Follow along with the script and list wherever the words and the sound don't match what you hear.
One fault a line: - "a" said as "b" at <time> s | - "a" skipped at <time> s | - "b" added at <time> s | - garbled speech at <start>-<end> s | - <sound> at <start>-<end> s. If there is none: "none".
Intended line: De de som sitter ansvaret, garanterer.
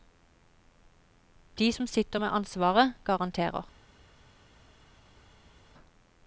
- "de" skipped at 1.7 s
- "med" added at 2.2 s